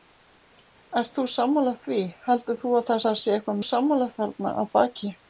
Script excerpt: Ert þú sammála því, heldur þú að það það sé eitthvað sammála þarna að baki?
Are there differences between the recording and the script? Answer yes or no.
no